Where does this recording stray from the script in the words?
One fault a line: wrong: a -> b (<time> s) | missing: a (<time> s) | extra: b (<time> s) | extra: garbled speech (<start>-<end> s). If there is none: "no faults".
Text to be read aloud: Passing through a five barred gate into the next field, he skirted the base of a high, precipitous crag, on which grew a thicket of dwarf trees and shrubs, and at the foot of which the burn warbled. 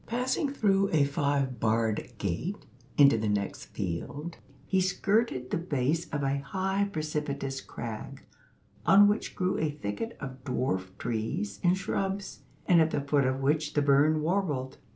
no faults